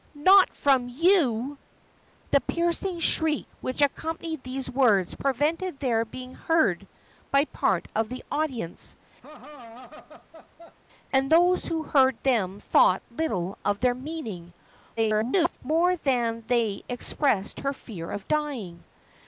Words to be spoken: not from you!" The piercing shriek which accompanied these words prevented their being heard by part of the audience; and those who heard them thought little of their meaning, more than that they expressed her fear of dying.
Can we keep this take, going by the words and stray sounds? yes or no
no